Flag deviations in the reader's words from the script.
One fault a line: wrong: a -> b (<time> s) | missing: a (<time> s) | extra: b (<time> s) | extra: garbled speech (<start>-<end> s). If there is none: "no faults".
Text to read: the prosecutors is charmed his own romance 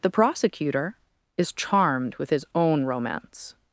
wrong: prosecutors -> prosecutor (0.1 s)
extra: with (2.1 s)